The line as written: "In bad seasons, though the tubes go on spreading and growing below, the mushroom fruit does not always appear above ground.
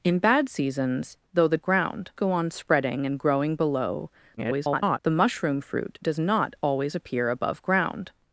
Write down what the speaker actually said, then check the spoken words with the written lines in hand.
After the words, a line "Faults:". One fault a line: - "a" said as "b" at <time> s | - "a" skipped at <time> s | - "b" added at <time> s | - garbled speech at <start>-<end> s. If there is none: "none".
"In bad seasons, though the ground go on spreading and growing below, [garbled] the mushroom fruit does not always appear above ground.
Faults:
- "tubes" said as "ground" at 1.6 s
- garbled speech at 4.4-5.0 s